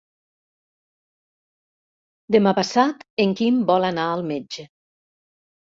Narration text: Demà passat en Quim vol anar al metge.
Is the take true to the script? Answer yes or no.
yes